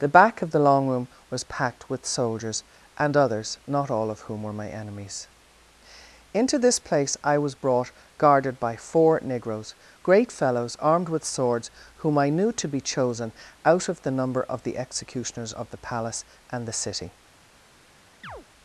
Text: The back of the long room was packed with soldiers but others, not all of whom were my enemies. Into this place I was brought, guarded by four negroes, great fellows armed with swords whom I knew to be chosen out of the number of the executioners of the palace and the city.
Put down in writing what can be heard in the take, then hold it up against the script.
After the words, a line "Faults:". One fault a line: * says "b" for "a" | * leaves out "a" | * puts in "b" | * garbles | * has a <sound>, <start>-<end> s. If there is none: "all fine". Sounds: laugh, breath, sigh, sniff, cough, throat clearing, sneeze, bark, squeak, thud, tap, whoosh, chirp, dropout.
The back of the long room was packed with soldiers and others, not all of whom were my enemies. Into this place I was brought, guarded by four negroes, great fellows armed with swords whom I knew to be chosen out of the number of the executioners of the palace and the city.
Faults:
* says "and" for "but"
* has a chirp, 18.2-18.5 s